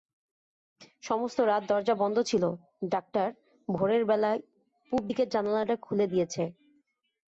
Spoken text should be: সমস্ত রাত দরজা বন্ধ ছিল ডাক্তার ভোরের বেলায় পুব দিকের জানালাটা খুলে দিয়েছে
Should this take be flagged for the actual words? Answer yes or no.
no